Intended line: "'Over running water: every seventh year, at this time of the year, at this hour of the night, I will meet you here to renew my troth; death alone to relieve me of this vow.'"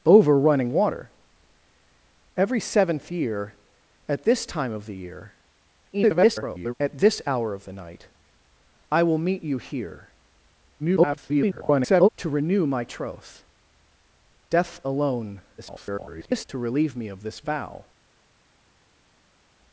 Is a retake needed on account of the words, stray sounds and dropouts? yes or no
yes